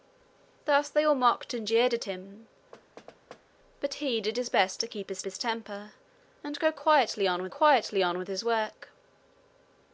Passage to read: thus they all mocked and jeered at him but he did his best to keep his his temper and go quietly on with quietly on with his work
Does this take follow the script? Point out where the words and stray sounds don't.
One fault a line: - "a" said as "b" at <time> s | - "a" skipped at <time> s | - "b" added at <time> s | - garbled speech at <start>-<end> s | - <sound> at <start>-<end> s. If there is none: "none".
- thud at 2.7-3.4 s